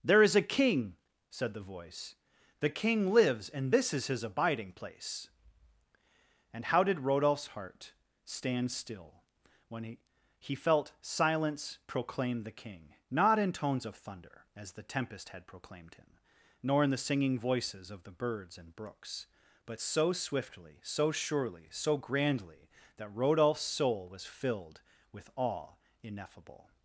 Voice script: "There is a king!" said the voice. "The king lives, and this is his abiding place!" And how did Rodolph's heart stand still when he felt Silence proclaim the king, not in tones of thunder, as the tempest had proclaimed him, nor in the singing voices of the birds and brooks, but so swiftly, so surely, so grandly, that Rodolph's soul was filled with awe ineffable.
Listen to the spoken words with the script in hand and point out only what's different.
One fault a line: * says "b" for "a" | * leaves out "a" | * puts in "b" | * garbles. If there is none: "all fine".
* puts in "he"